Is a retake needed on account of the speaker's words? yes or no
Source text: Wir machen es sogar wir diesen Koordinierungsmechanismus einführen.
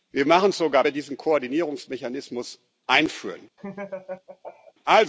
no